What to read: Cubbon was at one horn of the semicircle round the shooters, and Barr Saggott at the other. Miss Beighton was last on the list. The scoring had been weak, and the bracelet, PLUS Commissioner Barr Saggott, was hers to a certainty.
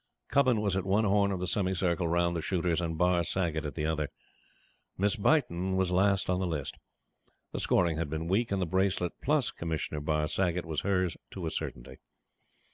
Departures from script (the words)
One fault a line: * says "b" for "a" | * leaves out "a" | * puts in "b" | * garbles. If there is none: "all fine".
all fine